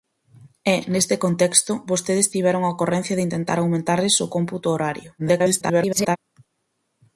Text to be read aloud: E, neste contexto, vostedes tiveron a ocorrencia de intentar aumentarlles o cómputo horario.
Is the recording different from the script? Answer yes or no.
yes